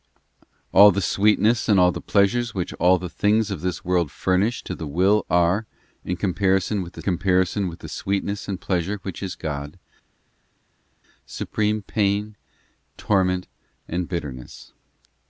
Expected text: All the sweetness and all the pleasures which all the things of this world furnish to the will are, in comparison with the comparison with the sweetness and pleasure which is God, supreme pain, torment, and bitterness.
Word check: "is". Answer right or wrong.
right